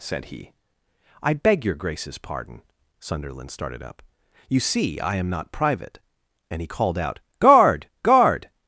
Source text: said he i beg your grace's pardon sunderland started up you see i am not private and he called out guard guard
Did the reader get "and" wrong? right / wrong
right